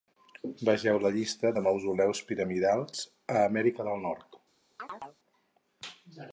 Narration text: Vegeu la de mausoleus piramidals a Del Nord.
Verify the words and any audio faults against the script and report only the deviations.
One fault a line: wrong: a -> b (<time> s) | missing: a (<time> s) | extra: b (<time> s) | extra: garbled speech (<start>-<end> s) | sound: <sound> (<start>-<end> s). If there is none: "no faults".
extra: llista (1.2 s)
extra: Amèrica (3.5 s)
sound: chirp (4.8-5.2 s)